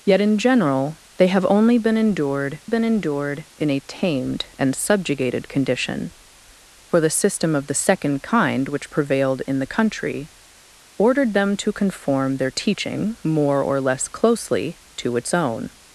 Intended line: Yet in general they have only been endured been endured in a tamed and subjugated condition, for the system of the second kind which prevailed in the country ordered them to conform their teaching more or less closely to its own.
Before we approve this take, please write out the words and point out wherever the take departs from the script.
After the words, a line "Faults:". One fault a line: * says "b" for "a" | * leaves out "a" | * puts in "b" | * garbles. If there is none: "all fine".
Yet in general they have only been endured been endured in a tamed and subjugated condition, for the system of the second kind which prevailed in the country ordered them to conform their teaching more or less closely to its own.
Faults:
all fine